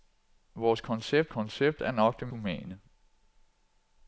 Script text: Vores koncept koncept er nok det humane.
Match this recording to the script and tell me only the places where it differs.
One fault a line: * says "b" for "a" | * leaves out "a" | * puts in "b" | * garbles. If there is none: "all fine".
all fine